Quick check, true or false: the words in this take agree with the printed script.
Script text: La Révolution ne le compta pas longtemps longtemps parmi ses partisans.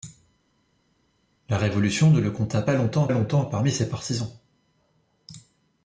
true